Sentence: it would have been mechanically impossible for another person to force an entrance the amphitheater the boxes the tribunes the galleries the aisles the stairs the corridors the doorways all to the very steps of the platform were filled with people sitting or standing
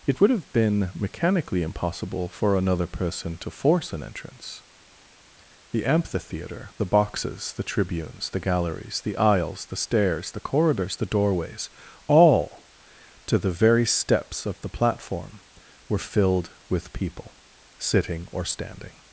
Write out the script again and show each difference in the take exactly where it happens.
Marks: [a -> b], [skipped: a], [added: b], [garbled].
it would have been mechanically impossible for another person to force an entrance the amphitheater the boxes the tribunes the galleries the aisles the stairs the corridors the doorways all to the very steps of the platform were filled with people sitting or standing